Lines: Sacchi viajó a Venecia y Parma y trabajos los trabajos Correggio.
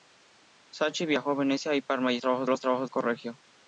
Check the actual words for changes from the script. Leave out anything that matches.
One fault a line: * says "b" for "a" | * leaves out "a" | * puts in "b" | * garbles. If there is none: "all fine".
all fine